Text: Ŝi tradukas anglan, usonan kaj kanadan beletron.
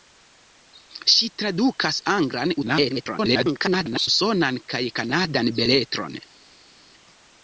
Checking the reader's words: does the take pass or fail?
fail